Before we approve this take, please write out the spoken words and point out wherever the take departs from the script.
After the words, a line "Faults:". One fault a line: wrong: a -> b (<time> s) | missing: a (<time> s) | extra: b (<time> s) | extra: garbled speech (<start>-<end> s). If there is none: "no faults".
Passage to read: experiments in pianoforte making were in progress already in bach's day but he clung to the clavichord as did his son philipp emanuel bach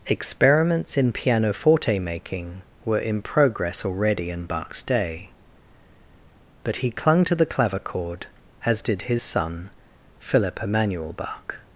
experiments in pianoforte making were in progress already in bach's day but he clung to the clavichord as did his son philipp emanuel bach
Faults:
no faults